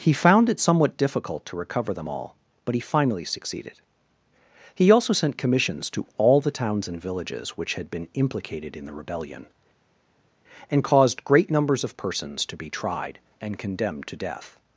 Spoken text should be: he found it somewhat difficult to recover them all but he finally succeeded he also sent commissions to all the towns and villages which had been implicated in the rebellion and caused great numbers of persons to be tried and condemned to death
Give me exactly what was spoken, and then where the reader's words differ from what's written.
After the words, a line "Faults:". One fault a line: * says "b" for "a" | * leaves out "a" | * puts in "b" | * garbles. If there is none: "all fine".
he found it somewhat difficult to recover them all but he finally succeeded he also sent commissions to all the towns and villages which had been implicated in the rebellion and caused great numbers of persons to be tried and condemned to death
Faults:
all fine